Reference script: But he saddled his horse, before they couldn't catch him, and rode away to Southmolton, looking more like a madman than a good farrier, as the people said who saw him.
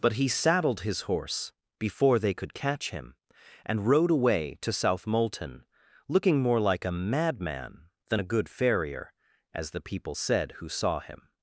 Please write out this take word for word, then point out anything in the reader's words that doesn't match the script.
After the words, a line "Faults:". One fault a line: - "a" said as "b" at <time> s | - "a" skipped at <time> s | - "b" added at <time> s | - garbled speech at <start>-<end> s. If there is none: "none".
But he saddled his horse, before they could catch him, and rode away to Southmolton, looking more like a madman than a good farrier, as the people said who saw him.
Faults:
- "couldn't" said as "could" at 2.3 s